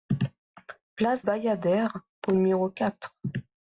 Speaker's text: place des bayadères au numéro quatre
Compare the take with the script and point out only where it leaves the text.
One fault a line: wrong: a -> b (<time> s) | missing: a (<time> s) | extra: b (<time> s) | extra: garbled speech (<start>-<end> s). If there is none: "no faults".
missing: des (1.3 s)